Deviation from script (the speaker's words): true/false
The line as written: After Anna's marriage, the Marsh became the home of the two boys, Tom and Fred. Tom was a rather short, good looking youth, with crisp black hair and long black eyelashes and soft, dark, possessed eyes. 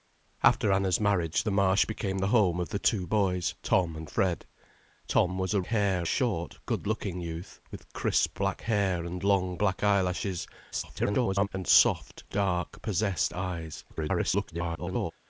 true